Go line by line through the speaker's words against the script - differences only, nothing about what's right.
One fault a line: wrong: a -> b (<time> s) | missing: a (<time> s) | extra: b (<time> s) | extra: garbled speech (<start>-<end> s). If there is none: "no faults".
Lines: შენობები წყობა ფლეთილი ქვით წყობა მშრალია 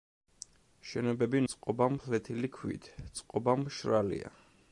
no faults